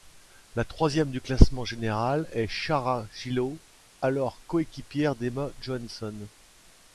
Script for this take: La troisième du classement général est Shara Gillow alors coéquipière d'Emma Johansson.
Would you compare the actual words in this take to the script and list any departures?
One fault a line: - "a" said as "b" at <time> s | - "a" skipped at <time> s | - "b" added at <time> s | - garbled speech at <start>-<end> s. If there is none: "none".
none